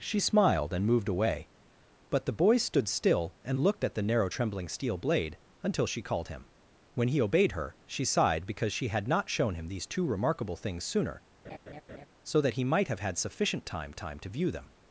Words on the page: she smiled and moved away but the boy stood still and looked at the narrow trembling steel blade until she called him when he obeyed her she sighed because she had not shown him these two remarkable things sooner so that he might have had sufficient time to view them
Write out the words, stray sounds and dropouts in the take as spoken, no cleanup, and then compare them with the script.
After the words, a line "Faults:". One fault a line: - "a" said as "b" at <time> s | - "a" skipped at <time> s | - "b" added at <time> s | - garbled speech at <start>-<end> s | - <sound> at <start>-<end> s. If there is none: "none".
she smiled and moved away but the boy stood still and looked at the narrow trembling steel blade until she called him when he obeyed her she sighed because she had not shown him these two remarkable things sooner so that he might have had sufficient time time to view them
Faults:
- laugh at 11.4-12.1 s
- "time" added at 13.9 s